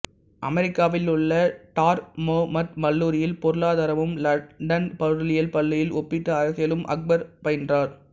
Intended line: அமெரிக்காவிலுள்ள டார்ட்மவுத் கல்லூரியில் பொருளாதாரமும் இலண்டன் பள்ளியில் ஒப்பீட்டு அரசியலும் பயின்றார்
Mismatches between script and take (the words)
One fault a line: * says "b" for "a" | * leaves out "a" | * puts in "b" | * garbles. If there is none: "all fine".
* puts in "பொருளியல்"
* puts in "அக்பர்"